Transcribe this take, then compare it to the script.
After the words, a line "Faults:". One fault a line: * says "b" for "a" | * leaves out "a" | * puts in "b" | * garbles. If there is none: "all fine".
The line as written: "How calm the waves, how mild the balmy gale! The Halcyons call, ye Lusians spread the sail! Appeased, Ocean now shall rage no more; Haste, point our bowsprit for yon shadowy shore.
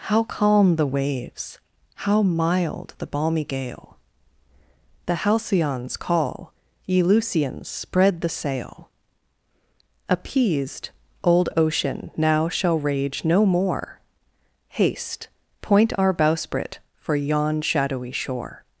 "How calm the waves, how mild the balmy gale! The Halcyons call, ye Lusians spread the sail! Appeased, old Ocean now shall rage no more; Haste, point our bowsprit for yon shadowy shore.
Faults:
* puts in "old"